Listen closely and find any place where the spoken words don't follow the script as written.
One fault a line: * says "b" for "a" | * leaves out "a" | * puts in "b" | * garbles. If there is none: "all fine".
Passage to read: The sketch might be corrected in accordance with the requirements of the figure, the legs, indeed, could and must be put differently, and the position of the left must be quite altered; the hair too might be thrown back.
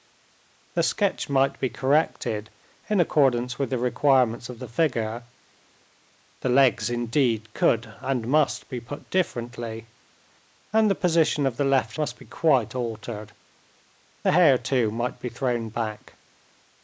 all fine